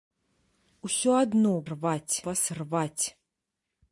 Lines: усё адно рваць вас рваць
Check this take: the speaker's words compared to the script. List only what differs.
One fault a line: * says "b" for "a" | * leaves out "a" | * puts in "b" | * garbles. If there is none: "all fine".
all fine